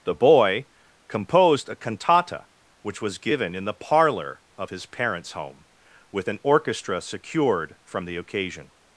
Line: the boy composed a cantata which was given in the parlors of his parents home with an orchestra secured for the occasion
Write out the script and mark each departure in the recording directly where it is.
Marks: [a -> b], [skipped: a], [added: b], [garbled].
the boy composed a cantata which was given in the [parlors -> parlor] of his parents home with an orchestra secured [for -> from] the occasion